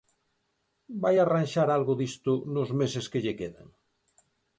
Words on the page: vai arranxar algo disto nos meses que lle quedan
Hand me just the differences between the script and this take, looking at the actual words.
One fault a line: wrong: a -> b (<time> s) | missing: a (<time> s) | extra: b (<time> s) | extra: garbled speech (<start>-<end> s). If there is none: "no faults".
no faults